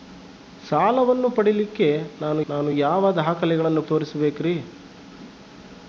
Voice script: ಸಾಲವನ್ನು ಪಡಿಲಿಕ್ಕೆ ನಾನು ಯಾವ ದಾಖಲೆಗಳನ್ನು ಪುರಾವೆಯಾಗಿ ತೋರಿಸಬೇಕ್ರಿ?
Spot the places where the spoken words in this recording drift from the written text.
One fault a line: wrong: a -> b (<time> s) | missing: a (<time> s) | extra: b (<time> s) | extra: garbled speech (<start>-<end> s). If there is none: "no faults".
extra: ನಾನು (2.5 s)
missing: ಪುರಾವೆಯಾಗಿ (3.8 s)